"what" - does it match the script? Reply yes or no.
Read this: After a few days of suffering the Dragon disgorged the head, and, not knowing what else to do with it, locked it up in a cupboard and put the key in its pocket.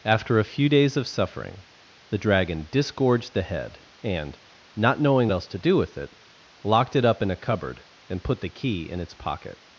no